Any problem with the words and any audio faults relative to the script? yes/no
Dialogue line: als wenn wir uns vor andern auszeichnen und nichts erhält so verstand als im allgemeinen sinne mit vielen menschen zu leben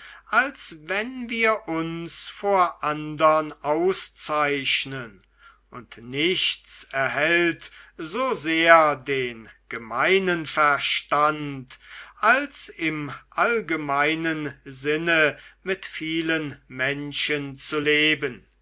yes